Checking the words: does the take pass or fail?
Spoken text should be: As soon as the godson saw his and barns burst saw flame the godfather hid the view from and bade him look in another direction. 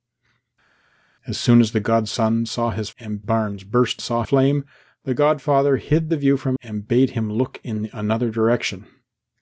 pass